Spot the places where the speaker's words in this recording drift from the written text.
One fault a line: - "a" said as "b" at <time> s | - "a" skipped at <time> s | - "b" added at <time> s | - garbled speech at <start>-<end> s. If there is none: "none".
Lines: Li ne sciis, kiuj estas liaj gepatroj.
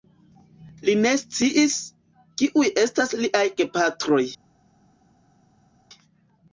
none